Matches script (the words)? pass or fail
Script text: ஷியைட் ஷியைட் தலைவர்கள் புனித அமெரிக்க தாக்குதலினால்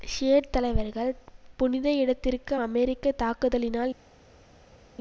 fail